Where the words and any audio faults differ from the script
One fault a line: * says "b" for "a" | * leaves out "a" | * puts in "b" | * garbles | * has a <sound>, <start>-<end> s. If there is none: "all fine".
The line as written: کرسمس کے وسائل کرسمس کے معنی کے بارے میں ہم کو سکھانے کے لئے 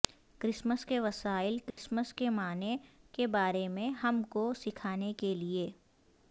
* has a dropout, 1.7-1.8 s